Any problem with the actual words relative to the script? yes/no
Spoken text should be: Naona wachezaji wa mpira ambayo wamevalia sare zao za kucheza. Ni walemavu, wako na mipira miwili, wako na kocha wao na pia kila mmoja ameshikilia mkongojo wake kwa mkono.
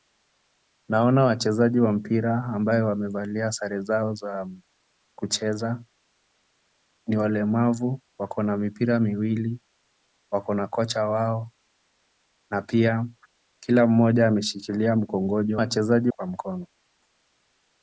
yes